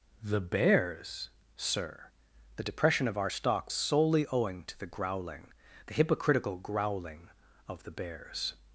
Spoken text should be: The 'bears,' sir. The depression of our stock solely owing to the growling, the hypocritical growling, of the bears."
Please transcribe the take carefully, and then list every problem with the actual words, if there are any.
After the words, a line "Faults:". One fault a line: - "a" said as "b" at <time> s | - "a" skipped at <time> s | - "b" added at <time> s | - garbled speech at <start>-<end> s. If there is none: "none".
The 'bears,' sir. The depression of our stock solely owing to the growling, the hypocritical growling, of the bears."
Faults:
none